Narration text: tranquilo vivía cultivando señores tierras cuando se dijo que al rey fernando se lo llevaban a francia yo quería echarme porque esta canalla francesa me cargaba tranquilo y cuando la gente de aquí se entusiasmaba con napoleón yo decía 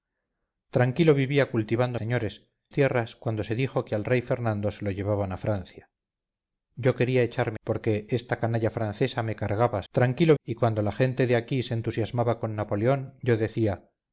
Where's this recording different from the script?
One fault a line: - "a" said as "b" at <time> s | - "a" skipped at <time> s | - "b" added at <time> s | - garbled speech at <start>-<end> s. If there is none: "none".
none